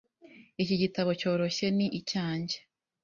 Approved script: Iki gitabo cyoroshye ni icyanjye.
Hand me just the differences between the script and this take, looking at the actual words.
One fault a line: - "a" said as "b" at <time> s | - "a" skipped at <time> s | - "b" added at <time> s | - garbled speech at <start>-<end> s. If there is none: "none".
none